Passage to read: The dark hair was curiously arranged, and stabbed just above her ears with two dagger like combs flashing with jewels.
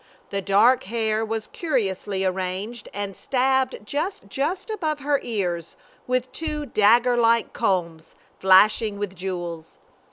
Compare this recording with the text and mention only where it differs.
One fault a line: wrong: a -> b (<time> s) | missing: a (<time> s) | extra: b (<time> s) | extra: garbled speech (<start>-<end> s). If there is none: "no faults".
extra: just (4.3 s)